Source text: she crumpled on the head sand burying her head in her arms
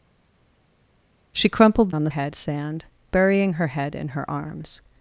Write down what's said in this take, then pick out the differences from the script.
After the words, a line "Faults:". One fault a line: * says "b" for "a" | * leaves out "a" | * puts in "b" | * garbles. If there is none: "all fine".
she crumpled on the head sand burying her head in her arms
Faults:
all fine